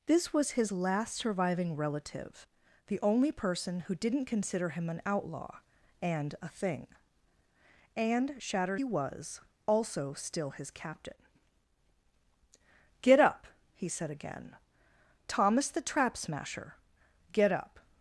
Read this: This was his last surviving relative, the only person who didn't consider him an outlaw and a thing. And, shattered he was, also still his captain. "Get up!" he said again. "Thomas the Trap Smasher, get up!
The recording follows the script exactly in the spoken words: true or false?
true